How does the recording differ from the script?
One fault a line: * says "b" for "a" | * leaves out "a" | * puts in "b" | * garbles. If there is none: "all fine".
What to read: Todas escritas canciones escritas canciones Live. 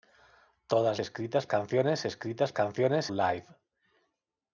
all fine